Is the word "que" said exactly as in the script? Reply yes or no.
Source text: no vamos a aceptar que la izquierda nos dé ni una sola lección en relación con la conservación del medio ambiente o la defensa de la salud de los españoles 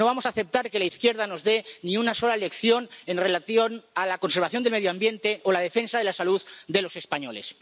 yes